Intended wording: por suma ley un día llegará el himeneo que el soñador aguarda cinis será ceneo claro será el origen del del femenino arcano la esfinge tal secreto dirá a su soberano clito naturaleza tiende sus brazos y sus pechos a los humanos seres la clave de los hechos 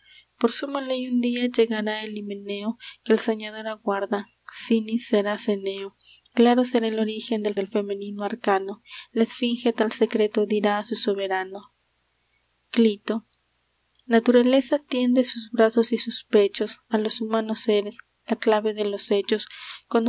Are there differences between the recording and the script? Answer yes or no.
no